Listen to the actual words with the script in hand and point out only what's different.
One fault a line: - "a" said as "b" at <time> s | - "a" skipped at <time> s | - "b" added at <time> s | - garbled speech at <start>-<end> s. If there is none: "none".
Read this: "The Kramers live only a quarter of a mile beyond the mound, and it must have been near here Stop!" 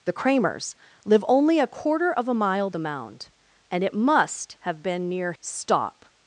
- "beyond" skipped at 2.7 s
- "here" skipped at 5.3 s